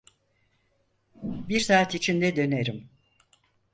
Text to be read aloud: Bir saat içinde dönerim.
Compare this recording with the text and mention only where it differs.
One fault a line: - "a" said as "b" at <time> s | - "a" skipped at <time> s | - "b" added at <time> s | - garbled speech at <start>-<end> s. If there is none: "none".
none